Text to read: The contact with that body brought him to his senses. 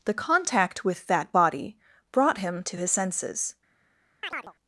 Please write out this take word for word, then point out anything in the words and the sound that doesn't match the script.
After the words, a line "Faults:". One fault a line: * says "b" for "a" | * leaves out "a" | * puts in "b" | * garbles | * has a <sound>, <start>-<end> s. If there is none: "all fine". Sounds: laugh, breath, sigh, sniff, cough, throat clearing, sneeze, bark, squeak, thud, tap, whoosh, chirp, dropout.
The contact with that body brought him to his senses.
Faults:
* has a chirp, 4.2-4.5 s